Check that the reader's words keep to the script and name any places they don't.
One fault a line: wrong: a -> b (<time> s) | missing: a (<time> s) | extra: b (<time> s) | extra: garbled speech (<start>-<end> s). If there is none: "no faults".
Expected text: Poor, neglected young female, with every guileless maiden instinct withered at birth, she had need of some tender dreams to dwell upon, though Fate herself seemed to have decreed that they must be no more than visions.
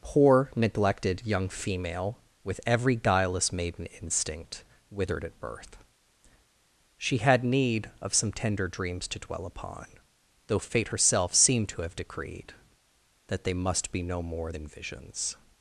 no faults